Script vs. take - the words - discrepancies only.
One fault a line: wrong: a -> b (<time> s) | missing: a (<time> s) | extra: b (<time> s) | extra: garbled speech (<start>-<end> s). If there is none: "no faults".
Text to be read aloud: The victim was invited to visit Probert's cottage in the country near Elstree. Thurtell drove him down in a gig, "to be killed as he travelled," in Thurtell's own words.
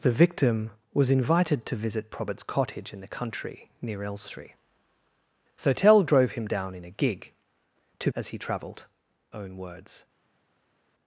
missing: be killed (8.1 s)
missing: in Thurtell's (8.9 s)